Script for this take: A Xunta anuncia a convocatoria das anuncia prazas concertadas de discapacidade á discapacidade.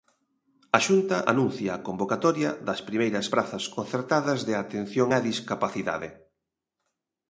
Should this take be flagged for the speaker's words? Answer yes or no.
yes